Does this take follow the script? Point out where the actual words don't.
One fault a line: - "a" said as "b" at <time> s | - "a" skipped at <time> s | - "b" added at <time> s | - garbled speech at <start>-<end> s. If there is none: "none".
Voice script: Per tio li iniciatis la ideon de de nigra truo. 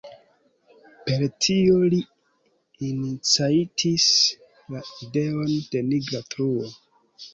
- "de" skipped at 5.8 s